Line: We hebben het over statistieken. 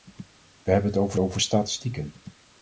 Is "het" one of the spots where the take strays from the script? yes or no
no